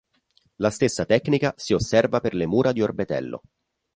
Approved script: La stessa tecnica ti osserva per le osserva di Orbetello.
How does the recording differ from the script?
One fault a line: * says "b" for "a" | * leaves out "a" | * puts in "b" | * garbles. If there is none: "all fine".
* says "si" for "ti"
* says "mura" for "osserva"